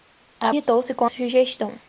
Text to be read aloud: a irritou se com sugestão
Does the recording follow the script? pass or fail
pass